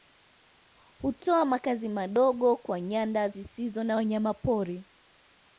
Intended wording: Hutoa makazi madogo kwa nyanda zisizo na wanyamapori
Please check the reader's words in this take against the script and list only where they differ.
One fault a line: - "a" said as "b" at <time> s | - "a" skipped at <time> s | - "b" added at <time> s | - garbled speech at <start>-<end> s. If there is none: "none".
none